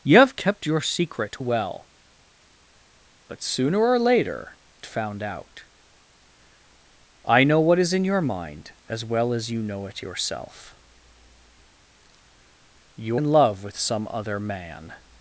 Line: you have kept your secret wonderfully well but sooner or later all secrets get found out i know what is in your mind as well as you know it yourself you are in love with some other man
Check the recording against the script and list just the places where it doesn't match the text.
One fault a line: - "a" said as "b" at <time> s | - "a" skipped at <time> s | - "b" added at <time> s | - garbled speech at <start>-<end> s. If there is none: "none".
- "wonderfully" skipped at 1.4 s
- "all secrets get" skipped at 4.5 s
- "are" skipped at 13.2 s